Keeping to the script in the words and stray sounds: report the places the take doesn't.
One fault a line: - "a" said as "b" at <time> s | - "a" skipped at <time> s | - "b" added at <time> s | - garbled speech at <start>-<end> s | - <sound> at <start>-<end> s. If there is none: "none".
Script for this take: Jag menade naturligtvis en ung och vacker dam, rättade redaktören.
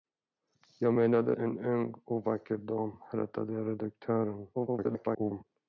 - "naturligtvis" skipped at 1.4 s
- garbled speech at 4.5-5.4 s